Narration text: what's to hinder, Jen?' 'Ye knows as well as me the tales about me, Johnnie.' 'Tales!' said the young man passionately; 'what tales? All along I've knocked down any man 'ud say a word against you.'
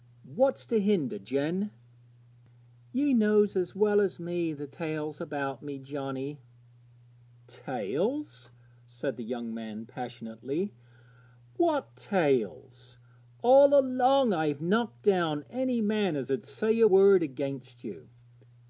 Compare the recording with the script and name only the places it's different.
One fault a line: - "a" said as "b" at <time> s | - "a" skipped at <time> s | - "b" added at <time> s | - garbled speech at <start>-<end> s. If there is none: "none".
- "as" added at 16.1 s